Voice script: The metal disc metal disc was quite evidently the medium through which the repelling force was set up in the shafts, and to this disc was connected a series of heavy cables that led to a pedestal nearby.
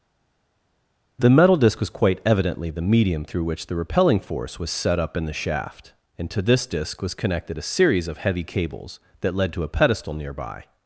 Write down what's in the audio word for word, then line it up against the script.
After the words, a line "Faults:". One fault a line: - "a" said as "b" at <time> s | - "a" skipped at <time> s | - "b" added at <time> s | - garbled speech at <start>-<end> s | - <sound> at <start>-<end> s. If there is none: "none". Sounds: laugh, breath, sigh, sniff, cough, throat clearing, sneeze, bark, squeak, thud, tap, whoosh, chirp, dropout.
The metal disc was quite evidently the medium through which the repelling force was set up in the shaft, and to this disc was connected a series of heavy cables that led to a pedestal nearby.
Faults:
- "metal disc" skipped at 1.8 s
- "shafts" said as "shaft" at 5.3 s